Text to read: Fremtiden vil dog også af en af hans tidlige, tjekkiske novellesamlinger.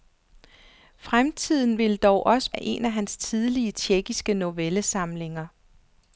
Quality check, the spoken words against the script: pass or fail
pass